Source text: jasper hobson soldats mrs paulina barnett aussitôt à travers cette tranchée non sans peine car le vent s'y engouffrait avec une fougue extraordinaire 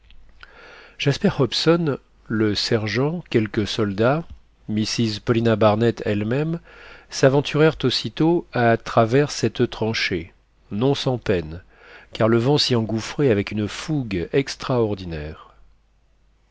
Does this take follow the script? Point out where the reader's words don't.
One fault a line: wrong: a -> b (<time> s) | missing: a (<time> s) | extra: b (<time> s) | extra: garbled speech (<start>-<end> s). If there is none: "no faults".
extra: le sergent quelques (2.2 s)
extra: elle même s'aventurèrent (6.1 s)